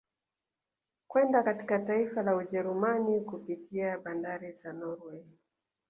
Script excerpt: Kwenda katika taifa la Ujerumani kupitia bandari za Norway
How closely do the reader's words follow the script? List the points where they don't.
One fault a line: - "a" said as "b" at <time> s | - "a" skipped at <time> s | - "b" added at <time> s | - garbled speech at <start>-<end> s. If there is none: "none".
none